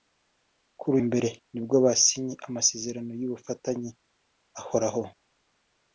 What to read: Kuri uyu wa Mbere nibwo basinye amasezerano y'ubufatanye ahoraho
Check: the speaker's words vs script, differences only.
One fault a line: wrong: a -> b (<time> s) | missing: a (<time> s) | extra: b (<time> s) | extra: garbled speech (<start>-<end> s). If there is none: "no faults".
missing: uyu wa (0.9 s)